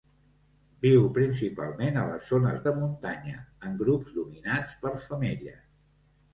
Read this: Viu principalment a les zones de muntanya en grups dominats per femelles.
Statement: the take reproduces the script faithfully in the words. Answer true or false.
true